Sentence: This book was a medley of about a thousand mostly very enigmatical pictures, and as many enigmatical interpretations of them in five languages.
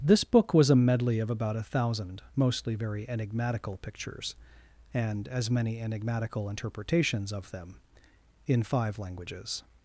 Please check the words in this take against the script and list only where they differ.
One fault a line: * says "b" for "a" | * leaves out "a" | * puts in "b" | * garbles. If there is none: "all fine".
all fine